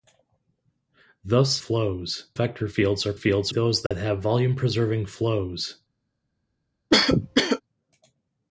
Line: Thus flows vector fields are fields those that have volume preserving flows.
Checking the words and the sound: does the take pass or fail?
fail